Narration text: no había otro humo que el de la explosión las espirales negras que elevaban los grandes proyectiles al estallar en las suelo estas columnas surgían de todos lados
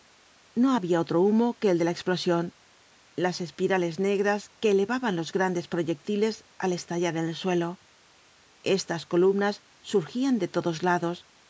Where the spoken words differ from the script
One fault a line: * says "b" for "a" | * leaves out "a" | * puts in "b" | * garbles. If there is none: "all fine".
* says "el" for "las"